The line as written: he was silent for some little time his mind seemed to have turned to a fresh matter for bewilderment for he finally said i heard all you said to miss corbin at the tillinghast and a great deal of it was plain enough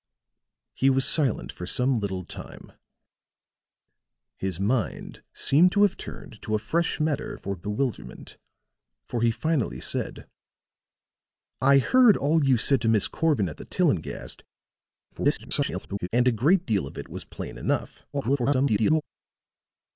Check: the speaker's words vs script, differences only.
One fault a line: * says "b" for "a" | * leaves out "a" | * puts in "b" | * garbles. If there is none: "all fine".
* garbles
* garbles